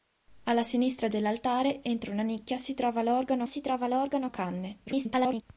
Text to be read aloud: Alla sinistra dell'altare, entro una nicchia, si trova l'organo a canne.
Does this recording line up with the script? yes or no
no